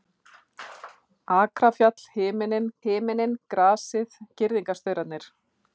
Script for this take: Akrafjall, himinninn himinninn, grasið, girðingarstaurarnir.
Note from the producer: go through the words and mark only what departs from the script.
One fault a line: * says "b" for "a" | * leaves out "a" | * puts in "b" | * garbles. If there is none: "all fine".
all fine